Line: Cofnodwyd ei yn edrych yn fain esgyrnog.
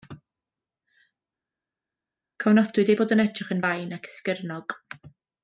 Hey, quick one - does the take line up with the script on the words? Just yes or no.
no